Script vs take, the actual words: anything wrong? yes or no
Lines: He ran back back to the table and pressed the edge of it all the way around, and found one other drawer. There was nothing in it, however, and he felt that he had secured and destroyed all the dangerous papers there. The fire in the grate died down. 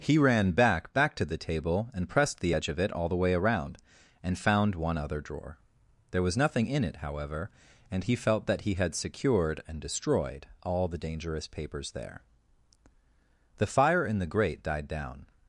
no